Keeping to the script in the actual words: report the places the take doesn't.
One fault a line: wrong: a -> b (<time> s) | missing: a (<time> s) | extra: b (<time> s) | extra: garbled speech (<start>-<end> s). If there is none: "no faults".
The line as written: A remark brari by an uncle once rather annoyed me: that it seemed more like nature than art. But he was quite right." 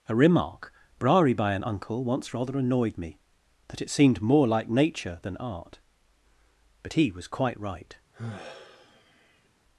no faults